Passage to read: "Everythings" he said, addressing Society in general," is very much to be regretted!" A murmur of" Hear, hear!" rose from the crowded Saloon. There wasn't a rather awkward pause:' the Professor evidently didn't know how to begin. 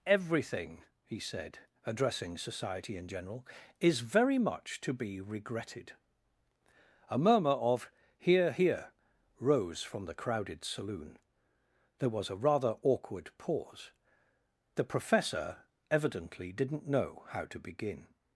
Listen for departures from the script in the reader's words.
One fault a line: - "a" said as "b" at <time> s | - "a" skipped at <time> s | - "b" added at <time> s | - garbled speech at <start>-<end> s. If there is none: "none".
- "Everythings" said as "Everything" at 0.1 s
- "wasn't" said as "was" at 12.1 s